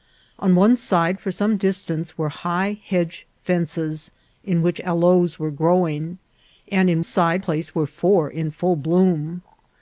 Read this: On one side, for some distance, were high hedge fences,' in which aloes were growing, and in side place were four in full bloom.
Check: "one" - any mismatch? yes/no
no